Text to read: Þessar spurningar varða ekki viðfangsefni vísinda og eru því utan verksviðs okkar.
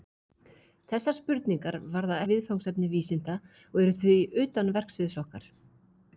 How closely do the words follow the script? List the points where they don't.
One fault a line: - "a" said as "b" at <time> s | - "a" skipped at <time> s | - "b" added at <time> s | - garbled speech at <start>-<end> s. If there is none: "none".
- "ekki" skipped at 2.2 s